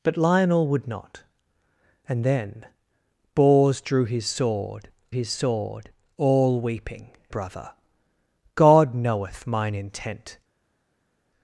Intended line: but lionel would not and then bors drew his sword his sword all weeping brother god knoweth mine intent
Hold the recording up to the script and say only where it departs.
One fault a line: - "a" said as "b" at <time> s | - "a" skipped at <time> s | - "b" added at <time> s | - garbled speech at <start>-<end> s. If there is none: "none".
none